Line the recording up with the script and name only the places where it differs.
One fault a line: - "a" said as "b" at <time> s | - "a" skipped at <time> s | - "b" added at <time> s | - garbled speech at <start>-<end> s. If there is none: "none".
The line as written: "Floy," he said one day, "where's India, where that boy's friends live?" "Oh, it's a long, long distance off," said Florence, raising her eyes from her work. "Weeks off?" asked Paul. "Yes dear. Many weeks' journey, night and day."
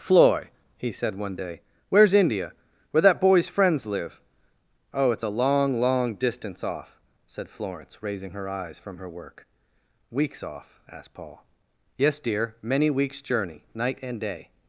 none